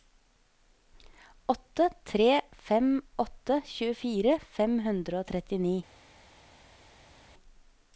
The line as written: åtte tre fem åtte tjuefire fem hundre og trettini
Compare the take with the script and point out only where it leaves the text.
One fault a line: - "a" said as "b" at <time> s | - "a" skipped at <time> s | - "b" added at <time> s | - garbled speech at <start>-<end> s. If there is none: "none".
none